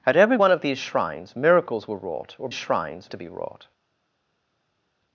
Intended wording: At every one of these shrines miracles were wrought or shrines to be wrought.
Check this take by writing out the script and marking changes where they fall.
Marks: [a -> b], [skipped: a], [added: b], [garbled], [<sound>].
At every one of these shrines miracles were wrought or shrines to be wrought.